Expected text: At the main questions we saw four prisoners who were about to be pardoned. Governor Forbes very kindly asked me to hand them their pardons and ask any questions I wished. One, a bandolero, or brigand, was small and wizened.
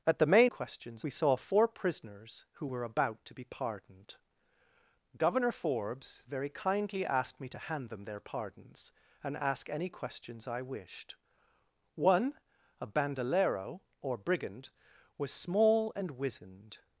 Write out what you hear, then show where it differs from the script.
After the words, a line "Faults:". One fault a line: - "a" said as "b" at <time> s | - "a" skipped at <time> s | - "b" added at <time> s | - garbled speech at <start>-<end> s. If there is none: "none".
At the main questions we saw four prisoners who were about to be pardoned. Governor Forbes very kindly asked me to hand them their pardons and ask any questions I wished. One, a bandolero, or brigand, was small and wizened.
Faults:
none